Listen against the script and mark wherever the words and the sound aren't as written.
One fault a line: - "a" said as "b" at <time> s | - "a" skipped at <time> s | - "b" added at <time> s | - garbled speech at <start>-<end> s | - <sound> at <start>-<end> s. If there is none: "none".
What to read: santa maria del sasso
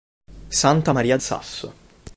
- "del" skipped at 1.2 s